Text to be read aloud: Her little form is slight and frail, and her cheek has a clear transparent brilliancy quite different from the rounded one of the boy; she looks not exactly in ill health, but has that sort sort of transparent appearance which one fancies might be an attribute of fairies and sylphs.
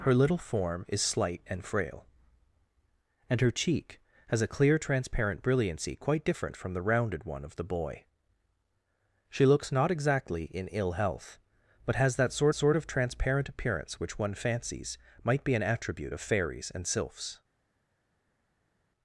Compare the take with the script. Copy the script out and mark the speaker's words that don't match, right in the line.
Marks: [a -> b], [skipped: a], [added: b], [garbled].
Her little form is slight and frail, and her cheek has a clear transparent brilliancy quite different from the rounded one of the boy; she looks not exactly in ill health, but has that sort sort of transparent appearance which one fancies might be an attribute of fairies and sylphs.